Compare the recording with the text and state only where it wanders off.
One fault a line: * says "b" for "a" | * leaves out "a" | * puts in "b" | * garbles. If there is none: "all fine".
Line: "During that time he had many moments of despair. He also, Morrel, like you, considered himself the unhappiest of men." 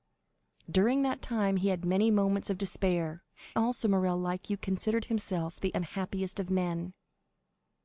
* leaves out "He"